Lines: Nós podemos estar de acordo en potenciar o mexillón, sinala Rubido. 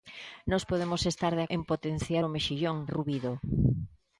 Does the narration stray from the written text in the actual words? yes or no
yes